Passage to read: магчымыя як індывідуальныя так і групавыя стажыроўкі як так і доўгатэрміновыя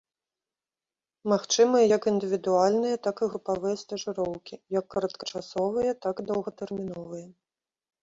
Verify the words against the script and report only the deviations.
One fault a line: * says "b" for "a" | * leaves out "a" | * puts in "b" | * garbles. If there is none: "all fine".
* puts in "кароткачасовыя"